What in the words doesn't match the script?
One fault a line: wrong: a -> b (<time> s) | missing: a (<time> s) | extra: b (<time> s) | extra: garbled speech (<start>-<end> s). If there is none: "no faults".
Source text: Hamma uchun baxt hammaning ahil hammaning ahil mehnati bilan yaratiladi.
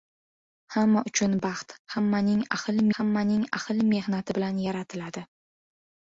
no faults